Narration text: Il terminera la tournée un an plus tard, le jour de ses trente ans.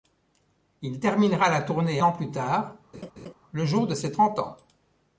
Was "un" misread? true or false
true